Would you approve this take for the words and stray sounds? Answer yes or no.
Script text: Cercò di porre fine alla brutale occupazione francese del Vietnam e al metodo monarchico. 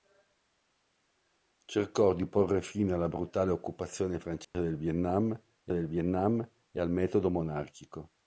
no